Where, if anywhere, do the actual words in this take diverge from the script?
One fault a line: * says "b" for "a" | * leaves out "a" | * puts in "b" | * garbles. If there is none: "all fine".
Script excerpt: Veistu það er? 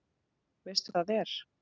all fine